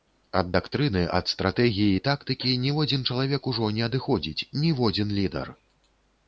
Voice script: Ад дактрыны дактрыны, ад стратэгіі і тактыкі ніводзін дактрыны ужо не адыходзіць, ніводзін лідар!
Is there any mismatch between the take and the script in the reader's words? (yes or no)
yes